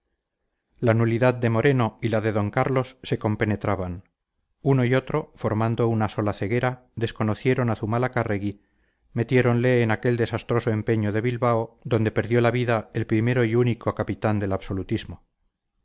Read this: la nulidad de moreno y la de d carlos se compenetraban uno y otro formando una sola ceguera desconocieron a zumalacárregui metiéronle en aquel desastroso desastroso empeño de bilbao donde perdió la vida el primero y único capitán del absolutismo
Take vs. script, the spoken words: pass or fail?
fail